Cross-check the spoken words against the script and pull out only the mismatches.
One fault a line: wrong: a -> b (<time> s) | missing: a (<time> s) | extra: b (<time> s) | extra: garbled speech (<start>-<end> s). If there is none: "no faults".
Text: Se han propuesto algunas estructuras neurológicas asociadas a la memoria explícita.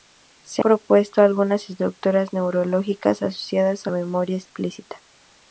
missing: han (0.6 s)
missing: la (3.9 s)